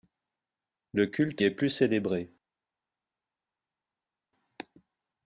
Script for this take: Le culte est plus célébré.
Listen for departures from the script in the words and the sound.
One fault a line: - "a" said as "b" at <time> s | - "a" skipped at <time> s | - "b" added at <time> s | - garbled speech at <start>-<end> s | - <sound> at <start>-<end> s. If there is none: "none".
none